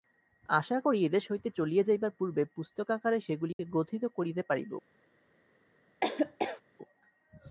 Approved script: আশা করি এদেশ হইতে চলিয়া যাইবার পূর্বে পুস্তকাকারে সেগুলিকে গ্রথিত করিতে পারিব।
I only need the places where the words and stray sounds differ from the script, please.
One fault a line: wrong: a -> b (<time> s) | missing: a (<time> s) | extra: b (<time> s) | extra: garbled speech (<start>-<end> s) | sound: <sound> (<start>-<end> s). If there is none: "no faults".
sound: dropout (3.5-3.6 s)
sound: laugh (6.0-6.6 s)